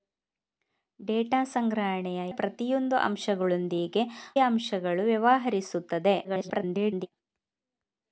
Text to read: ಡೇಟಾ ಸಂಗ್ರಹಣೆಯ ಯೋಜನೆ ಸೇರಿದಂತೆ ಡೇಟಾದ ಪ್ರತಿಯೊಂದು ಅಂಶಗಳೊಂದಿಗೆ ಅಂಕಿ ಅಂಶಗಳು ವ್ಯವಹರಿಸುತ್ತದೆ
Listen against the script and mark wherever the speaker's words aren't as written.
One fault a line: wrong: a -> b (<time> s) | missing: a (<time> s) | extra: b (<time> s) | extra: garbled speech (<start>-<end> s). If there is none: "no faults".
missing: ಯೋಜನೆ ಸೇರಿದಂತೆ ಡೇಟಾದ (2.3 s)
missing: ಅಂಕಿ (4.0 s)
extra: garbled speech (6.2-7.1 s)